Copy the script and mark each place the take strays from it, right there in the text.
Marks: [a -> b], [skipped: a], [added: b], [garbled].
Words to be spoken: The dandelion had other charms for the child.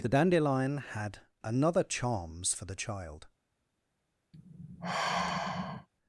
The dandelion had [other -> another] charms for the child.